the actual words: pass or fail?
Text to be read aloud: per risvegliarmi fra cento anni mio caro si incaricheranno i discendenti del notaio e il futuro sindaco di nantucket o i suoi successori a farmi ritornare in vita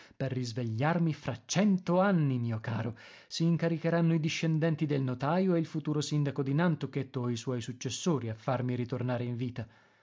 pass